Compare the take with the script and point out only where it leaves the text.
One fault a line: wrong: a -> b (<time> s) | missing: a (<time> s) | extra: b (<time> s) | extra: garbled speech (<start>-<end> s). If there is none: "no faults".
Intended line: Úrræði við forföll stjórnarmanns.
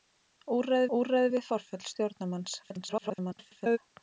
extra: úrræði (1.0 s)
extra: garbled speech (2.6-3.8 s)